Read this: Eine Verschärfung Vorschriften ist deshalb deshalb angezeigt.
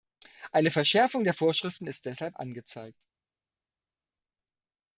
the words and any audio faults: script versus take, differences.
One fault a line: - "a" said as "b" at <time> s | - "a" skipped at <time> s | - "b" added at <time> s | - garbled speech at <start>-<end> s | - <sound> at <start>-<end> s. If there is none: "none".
- "der" added at 1.2 s
- "deshalb" skipped at 2.4 s